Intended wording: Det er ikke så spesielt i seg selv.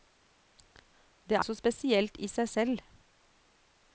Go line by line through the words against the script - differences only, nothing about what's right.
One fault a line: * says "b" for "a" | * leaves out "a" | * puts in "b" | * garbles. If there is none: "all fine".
* leaves out "ikke"